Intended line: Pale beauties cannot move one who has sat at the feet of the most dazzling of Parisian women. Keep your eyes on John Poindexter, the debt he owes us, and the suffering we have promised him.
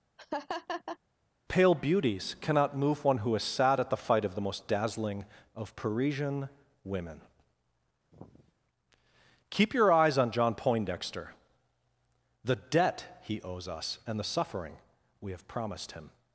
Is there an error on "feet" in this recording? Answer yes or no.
yes